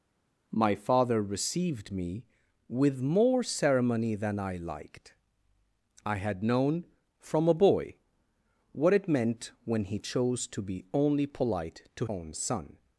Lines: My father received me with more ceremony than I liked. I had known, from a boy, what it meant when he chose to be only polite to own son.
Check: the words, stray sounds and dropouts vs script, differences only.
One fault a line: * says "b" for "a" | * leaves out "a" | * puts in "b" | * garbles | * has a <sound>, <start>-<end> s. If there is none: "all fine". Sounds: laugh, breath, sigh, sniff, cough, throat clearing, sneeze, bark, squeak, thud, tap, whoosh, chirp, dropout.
all fine